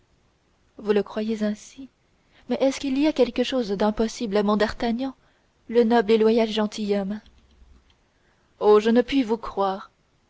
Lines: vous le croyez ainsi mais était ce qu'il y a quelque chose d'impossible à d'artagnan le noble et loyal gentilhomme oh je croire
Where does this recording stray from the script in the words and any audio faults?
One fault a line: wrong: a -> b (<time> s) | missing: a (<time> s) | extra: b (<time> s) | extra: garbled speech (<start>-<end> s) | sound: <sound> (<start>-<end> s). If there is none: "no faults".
wrong: était -> est (2.6 s)
extra: mon (4.4 s)
extra: ne puis vous (8.9 s)